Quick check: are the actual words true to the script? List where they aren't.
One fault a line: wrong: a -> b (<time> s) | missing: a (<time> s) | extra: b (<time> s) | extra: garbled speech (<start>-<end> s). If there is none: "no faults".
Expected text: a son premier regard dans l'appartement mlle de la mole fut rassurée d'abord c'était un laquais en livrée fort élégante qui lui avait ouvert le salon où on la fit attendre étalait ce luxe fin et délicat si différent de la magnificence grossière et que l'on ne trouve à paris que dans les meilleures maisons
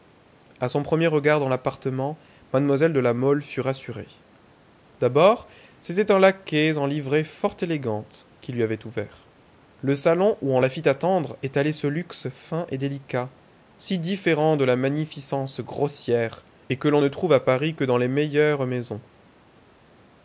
no faults